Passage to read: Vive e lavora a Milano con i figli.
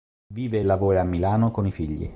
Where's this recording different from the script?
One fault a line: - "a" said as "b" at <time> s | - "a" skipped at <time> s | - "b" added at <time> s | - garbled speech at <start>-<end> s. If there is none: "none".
none